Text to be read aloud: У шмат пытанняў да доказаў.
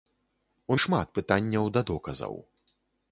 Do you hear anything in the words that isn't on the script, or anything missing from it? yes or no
no